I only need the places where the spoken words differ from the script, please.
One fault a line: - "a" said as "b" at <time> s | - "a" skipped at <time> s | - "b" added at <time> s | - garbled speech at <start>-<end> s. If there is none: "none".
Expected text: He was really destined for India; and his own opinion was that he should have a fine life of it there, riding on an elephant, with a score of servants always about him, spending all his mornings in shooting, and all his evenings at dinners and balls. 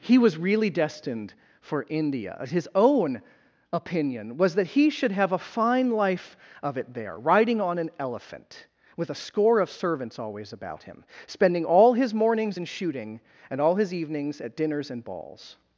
- "and" skipped at 2.4 s